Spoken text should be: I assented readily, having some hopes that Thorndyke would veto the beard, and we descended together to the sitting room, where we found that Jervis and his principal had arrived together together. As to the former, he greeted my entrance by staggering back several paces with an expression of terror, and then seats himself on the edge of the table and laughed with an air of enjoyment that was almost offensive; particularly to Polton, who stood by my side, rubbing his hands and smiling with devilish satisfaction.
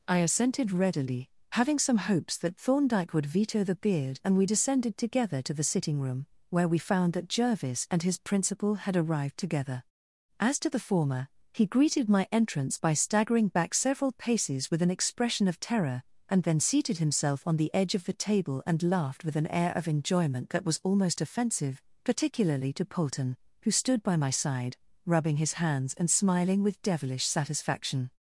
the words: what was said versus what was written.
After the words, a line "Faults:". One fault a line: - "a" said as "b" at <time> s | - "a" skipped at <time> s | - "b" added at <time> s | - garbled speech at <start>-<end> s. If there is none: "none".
I assented readily, having some hopes that Thorndyke would veto the beard, and we descended together to the sitting room, where we found that Jervis and his principal had arrived together. As to the former, he greeted my entrance by staggering back several paces with an expression of terror, and then seated himself on the edge of the table and laughed with an air of enjoyment that was almost offensive; particularly to Polton, who stood by my side, rubbing his hands and smiling with devilish satisfaction.
Faults:
- "together" skipped at 9.8 s
- "seats" said as "seated" at 16.6 s